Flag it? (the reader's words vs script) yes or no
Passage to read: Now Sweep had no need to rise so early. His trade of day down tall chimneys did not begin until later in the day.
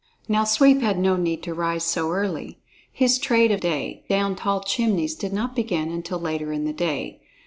no